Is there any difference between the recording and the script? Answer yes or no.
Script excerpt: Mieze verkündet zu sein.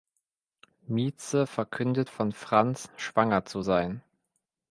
yes